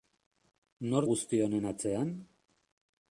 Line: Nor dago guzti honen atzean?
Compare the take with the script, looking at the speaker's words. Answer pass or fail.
fail